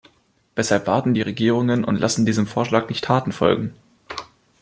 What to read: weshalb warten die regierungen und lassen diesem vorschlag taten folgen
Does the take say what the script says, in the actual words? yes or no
no